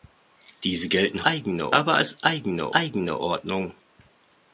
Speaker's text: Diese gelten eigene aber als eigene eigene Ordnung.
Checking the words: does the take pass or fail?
pass